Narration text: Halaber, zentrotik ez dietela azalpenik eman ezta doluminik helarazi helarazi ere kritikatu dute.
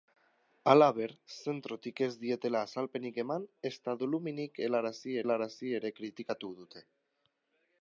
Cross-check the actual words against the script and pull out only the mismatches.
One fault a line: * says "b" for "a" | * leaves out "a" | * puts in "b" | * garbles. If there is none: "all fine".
all fine